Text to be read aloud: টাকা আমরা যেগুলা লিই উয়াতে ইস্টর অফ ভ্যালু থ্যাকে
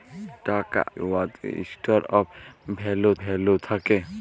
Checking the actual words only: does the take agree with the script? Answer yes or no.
no